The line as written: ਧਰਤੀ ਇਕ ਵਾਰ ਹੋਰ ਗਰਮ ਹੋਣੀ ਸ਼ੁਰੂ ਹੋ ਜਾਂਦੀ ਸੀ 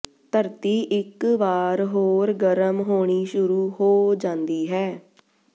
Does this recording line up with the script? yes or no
no